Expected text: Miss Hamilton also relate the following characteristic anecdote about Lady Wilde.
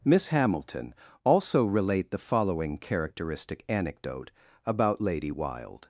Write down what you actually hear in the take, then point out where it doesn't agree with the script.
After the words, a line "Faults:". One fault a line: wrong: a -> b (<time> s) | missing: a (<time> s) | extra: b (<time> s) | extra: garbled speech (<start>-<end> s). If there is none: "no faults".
Miss Hamilton also relate the following characteristic anecdote about Lady Wilde.
Faults:
no faults